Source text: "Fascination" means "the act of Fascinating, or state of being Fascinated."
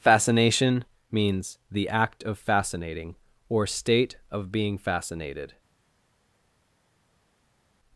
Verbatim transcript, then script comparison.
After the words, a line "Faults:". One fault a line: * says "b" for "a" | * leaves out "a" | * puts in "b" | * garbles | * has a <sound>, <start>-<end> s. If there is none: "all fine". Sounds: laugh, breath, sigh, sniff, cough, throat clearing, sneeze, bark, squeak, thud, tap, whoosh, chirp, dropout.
"Fascination" means "the act of Fascinating, or state of being Fascinated."
Faults:
all fine